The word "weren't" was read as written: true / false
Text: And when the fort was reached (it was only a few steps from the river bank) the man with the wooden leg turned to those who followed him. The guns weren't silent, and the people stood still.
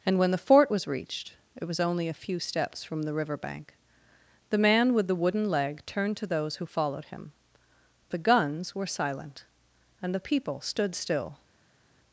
false